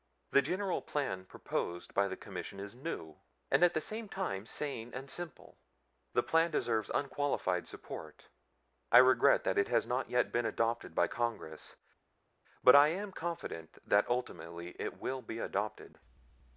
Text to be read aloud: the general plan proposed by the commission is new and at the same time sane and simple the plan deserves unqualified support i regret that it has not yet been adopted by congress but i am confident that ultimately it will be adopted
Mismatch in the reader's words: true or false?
false